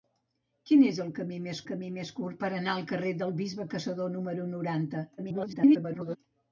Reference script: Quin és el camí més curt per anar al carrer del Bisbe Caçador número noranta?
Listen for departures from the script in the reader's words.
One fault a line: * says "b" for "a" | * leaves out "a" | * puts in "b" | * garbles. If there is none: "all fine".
* puts in "camí més"
* garbles